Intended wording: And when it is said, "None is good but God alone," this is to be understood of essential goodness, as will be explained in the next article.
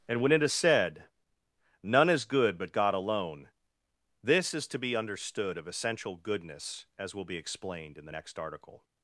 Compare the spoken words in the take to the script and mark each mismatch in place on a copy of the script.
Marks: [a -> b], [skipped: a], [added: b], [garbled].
And when it is said, "None is good but God alone," this is to be understood of essential goodness, as will be explained in the next article.